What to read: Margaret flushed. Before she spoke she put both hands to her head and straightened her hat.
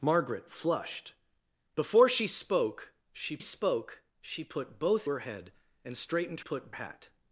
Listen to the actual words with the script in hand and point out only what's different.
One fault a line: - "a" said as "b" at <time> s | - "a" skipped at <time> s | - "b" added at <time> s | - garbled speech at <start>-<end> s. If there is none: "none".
- "spoke she" added at 3.4 s
- "hands to" skipped at 5.1 s
- "her" said as "put" at 6.4 s